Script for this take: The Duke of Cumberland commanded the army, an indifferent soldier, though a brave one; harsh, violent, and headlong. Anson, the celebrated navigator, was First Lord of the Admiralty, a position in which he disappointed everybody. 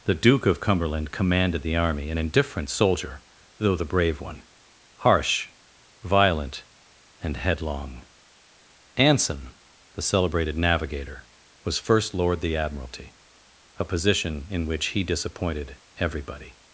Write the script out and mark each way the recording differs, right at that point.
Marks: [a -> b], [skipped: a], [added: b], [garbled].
The Duke of Cumberland commanded the army, an indifferent soldier, though [a -> the] brave one; harsh, violent, and headlong. Anson, the celebrated navigator, was First Lord [skipped: of] the Admiralty, a position in which he disappointed everybody.